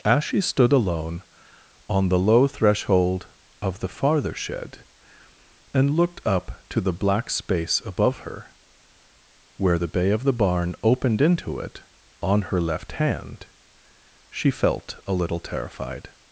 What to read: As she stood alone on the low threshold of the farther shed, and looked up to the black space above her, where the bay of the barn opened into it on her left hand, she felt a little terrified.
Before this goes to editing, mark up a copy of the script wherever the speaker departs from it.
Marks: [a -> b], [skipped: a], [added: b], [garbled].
As she stood alone on the low threshold of the farther shed, and looked up to the black space above her, where the bay of the barn opened into it on her left hand, she felt a little terrified.